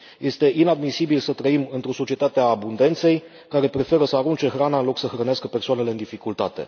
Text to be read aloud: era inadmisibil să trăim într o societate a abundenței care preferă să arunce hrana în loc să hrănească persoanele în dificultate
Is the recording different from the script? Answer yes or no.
yes